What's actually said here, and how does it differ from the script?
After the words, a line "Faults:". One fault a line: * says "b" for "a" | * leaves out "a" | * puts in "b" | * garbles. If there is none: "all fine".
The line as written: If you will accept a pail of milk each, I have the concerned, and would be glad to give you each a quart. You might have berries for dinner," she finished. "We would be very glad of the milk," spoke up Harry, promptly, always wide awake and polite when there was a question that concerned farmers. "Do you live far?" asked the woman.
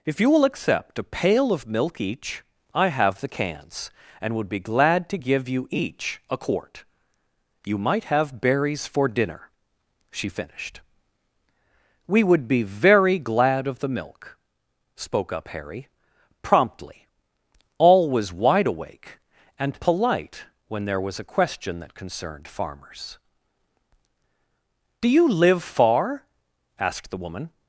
If you will accept a pail of milk each, I have the cans, and would be glad to give you each a quart. You might have berries for dinner," she finished. "We would be very glad of the milk," spoke up Harry, promptly, always wide awake and polite when there was a question that concerned farmers. "Do you live far?" asked the woman.
Faults:
* says "cans" for "concerned"